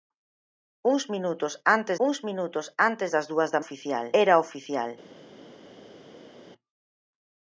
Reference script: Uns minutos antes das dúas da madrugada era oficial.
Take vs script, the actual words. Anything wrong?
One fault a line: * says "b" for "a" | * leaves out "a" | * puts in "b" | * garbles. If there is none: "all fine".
* puts in "uns minutos antes"
* says "oficial" for "madrugada"